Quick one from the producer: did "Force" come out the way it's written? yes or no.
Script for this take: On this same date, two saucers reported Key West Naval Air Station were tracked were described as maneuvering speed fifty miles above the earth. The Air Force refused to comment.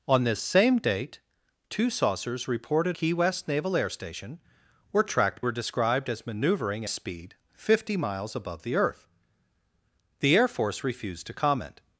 yes